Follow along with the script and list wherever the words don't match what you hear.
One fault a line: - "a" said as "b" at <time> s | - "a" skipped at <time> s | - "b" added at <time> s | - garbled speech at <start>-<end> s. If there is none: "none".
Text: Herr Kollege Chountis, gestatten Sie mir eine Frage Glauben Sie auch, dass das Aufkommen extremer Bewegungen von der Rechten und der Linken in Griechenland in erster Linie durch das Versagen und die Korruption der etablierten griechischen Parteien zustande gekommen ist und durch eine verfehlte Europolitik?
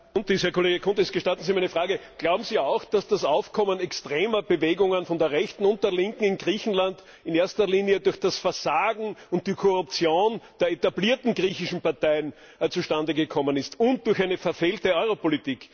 none